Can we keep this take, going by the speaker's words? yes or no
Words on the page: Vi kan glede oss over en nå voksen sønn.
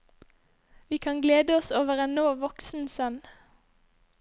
yes